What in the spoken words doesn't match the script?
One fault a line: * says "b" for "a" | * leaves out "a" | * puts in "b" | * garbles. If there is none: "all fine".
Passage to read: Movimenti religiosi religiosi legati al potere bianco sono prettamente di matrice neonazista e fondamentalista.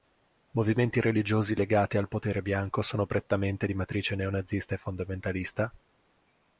* leaves out "religiosi"